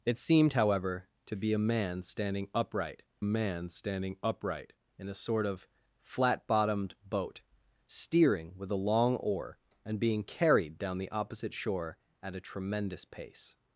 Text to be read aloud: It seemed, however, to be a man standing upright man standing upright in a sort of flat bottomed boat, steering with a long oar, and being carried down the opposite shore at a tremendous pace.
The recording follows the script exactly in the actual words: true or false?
true